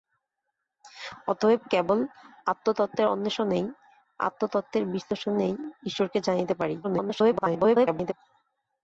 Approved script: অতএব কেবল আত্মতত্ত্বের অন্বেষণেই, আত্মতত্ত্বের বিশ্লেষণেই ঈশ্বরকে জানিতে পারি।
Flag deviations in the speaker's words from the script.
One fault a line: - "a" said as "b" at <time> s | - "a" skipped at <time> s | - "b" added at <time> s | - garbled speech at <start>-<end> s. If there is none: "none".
- garbled speech at 6.8-8.1 s